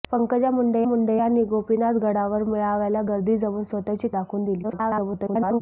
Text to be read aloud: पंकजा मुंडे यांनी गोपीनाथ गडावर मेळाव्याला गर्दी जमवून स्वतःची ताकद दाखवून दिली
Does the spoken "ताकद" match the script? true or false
false